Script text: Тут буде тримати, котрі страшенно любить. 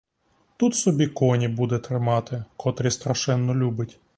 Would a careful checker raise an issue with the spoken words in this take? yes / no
yes